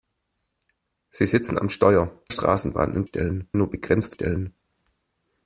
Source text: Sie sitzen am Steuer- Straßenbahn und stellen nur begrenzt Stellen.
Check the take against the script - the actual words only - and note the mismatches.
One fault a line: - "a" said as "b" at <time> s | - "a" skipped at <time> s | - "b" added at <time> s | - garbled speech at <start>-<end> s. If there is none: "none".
none